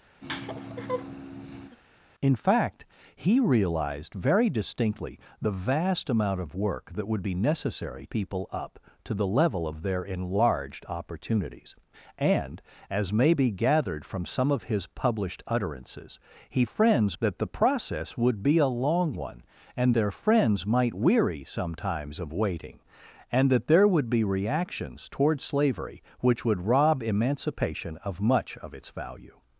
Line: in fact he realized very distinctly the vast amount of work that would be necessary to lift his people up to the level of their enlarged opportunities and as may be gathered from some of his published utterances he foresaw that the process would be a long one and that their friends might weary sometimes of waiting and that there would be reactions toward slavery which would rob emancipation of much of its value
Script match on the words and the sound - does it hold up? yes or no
no